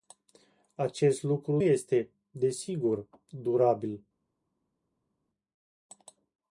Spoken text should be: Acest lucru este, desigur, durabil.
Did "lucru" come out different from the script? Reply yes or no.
no